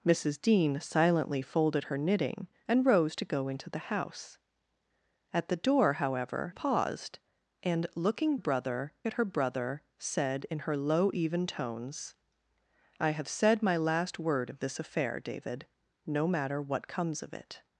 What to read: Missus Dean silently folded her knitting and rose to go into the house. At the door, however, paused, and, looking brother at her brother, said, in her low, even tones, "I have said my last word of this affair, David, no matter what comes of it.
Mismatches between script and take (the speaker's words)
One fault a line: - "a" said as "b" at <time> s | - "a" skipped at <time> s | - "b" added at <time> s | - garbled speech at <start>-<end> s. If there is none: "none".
none